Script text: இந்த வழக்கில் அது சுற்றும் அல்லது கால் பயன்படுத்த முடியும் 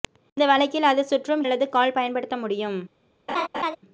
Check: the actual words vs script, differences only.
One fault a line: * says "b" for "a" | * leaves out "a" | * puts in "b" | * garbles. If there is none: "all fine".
all fine